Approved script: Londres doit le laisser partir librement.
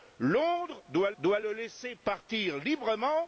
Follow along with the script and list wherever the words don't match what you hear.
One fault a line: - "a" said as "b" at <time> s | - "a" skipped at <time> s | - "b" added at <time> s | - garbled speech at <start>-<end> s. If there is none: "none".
- "doit" added at 1.2 s